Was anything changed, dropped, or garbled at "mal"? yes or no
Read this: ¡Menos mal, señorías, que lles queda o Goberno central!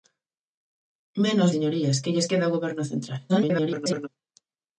yes